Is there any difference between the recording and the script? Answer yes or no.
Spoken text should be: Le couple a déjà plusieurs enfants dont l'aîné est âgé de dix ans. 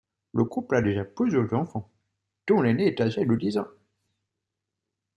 no